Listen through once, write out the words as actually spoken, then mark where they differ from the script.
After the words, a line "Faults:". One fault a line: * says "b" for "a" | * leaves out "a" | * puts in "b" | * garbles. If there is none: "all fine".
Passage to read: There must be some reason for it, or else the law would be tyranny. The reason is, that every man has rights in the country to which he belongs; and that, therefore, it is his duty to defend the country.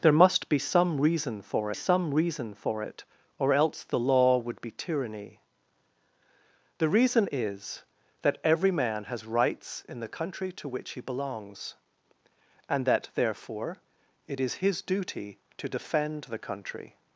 There must be some reason for some reason for it, or else the law would be tyranny. The reason is, that every man has rights in the country to which he belongs; and that, therefore, it is his duty to defend the country.
Faults:
* puts in "some reason for"